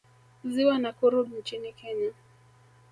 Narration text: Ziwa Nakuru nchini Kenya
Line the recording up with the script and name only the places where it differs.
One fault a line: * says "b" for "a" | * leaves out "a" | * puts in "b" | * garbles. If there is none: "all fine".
all fine